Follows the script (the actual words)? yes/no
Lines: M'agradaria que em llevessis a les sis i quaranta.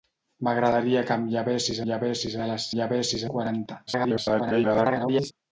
no